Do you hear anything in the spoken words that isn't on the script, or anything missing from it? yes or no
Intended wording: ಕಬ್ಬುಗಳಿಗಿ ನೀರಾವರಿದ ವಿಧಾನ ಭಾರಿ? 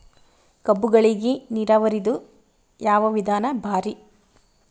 yes